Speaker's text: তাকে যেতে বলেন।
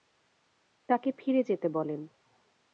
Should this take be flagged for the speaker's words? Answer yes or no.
yes